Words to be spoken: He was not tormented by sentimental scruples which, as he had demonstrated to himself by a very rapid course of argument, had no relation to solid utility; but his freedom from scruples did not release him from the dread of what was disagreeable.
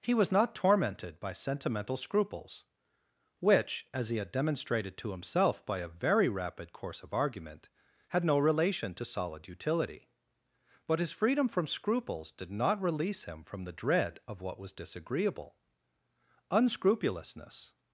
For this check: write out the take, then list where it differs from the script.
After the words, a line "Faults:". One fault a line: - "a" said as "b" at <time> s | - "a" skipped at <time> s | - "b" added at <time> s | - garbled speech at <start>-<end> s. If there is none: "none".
He was not tormented by sentimental scruples which, as he had demonstrated to himself by a very rapid course of argument, had no relation to solid utility; but his freedom from scruples did not release him from the dread of what was disagreeable. Unscrupulousness
Faults:
- "Unscrupulousness" added at 16.5 s